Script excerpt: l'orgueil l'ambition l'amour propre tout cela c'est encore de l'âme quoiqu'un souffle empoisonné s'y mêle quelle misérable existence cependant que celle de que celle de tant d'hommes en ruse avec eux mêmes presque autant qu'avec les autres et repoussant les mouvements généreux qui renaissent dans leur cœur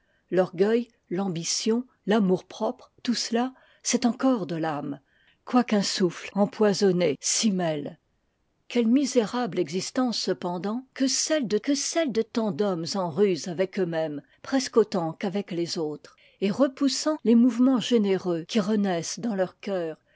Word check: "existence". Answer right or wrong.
right